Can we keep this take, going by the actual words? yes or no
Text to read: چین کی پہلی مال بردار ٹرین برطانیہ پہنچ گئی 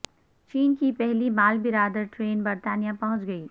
yes